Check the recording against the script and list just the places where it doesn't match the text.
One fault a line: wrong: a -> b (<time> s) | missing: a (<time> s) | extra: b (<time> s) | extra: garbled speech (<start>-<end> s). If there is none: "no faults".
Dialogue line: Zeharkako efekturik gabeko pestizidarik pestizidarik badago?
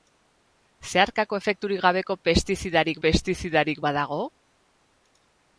no faults